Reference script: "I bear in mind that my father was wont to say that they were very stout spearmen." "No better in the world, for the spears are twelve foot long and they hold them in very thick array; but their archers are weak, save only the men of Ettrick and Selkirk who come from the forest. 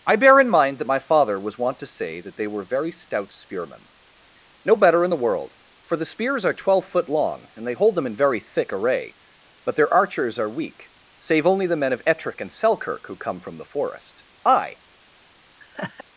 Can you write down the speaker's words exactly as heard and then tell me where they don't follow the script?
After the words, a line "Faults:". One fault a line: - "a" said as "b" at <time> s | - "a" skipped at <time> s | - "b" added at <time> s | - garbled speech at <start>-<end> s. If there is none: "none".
"I bear in mind that my father was wont to say that they were very stout spearmen." "No better in the world, for the spears are twelve foot long and they hold them in very thick array; but their archers are weak, save only the men of Ettrick and Selkirk who come from the forest. I
Faults:
- "I" added at 14.5 s